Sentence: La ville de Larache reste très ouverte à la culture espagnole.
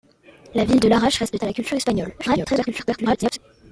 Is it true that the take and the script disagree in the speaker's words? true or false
true